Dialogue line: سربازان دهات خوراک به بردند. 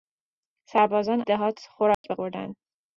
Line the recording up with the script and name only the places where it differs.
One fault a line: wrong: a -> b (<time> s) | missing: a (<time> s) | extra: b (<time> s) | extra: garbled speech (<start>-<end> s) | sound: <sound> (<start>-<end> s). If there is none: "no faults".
sound: dropout (1.9-2.0 s)